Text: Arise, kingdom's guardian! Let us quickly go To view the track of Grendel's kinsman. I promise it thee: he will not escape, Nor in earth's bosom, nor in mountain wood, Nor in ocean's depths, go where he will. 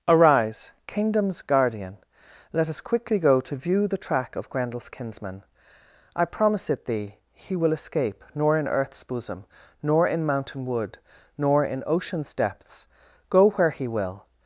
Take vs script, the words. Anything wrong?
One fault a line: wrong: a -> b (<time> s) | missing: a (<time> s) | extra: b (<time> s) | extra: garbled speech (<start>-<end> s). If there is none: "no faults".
missing: not (7.7 s)